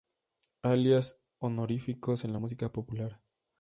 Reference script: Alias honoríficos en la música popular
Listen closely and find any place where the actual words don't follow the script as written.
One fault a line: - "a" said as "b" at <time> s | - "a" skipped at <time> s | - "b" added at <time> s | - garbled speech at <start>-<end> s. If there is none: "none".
none